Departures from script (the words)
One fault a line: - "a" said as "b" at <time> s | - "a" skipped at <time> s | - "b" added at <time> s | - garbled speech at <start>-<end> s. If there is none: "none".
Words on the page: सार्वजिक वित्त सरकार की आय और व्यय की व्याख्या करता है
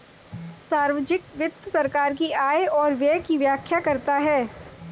none